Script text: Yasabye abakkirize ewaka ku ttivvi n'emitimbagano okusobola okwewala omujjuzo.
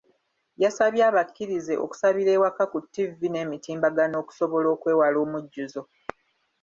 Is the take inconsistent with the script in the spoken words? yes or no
yes